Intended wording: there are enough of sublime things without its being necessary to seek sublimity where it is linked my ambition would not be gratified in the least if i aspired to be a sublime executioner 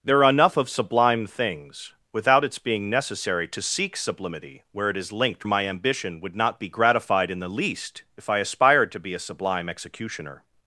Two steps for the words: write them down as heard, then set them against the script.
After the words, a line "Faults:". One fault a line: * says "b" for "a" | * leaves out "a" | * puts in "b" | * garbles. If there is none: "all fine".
there are enough of sublime things without its being necessary to seek sublimity where it is linked my ambition would not be gratified in the least if i aspired to be a sublime executioner
Faults:
all fine